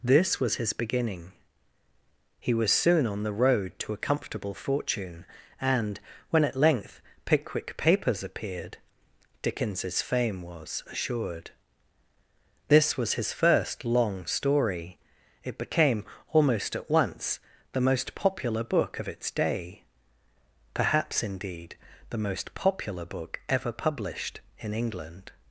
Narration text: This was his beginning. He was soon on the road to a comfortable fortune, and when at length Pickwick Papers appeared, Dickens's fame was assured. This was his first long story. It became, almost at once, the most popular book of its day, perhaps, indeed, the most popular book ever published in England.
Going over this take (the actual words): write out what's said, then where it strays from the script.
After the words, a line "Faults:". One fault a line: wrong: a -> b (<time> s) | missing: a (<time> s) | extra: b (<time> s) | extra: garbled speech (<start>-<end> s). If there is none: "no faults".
This was his beginning. He was soon on the road to a comfortable fortune, and when at length Pickwick Papers appeared, Dickens's fame was assured. This was his first long story. It became, almost at once, the most popular book of its day, perhaps, indeed, the most popular book ever published in England.
Faults:
no faults